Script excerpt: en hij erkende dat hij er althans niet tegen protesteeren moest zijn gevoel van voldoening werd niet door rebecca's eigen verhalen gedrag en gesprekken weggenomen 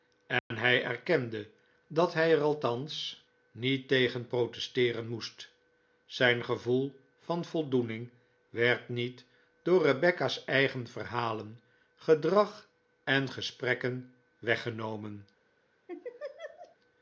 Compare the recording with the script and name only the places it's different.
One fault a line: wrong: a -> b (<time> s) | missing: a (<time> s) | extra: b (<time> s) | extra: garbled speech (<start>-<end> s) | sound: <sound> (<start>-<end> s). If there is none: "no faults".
sound: dropout (0.4-0.5 s)
sound: laugh (15.9-16.8 s)